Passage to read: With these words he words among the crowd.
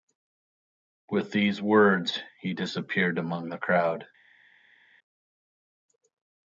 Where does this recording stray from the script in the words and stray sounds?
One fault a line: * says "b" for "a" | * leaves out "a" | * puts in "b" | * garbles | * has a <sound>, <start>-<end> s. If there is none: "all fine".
* says "disappeared" for "words"